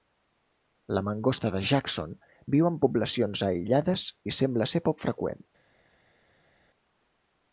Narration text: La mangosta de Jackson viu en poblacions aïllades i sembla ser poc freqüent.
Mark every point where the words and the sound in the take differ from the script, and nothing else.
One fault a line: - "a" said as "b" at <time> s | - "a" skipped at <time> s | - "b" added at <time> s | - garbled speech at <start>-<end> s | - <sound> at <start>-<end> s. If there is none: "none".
none